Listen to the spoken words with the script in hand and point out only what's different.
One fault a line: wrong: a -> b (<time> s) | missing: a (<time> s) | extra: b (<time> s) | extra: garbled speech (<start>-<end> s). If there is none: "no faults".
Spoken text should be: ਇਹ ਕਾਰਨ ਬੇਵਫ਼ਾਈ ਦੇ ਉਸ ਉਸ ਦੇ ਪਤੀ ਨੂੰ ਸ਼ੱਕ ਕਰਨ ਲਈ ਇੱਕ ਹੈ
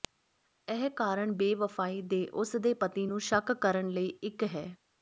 missing: ਉਸ (2.5 s)